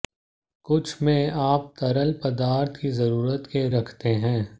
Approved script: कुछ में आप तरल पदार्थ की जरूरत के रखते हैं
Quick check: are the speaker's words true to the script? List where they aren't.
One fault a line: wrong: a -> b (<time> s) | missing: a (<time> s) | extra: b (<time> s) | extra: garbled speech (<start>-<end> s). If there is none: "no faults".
no faults